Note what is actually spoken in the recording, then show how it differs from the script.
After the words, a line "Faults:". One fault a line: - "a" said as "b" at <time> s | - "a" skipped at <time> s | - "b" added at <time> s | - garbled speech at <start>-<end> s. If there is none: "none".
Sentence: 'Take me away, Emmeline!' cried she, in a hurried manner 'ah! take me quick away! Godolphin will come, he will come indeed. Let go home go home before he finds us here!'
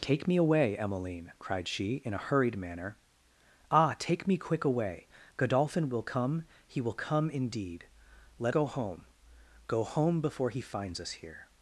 'Take me away, Emmeline!' cried she, in a hurried manner 'ah! take me quick away! Godolphin will come, he will come indeed. Let go home go home before he finds us here!'
Faults:
none